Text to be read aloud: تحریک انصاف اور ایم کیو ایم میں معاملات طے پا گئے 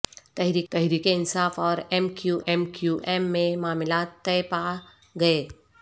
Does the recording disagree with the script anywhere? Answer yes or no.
yes